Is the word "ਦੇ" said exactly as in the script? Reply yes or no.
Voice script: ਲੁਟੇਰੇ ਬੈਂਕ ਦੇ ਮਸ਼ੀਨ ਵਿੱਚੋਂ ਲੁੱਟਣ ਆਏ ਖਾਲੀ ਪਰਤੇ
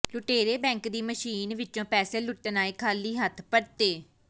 no